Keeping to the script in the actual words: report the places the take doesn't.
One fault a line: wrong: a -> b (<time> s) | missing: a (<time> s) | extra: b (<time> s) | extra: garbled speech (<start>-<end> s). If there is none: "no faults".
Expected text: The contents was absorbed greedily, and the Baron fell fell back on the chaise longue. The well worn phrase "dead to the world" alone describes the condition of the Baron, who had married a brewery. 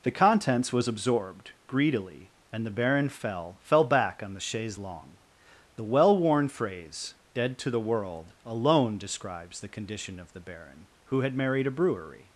no faults